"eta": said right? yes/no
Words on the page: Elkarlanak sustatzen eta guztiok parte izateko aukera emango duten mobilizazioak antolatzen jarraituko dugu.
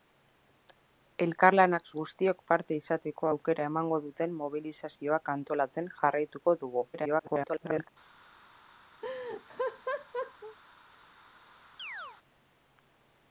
no